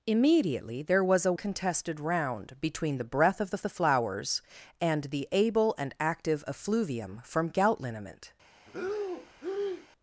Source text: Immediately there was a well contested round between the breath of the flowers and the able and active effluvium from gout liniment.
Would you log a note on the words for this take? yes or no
yes